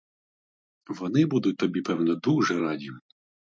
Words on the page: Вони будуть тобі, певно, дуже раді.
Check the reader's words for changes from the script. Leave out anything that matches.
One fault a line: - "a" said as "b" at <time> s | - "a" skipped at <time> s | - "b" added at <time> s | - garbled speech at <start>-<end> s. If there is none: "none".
none